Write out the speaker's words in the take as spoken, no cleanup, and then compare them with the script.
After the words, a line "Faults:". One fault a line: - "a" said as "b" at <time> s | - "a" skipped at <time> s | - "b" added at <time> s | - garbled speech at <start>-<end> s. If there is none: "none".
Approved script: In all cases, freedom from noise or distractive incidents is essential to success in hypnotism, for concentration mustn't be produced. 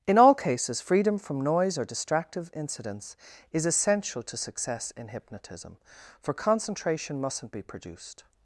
In all cases, freedom from noise or distractive incidents is essential to success in hypnotism, for concentration mustn't be produced.
Faults:
none